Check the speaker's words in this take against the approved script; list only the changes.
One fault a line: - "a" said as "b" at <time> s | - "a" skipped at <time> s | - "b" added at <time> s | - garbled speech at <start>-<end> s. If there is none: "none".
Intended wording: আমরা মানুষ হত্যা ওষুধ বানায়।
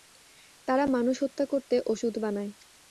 - "আমরা" said as "তারা" at 0.7 s
- "করতে" added at 1.5 s